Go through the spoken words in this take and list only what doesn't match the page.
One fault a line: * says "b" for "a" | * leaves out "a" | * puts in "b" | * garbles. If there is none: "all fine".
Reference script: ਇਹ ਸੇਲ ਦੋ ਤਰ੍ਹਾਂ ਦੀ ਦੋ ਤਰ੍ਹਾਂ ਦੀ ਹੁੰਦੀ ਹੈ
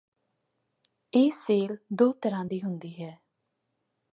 * leaves out "ਦੋ ਤਰ੍ਹਾਂ ਦੀ"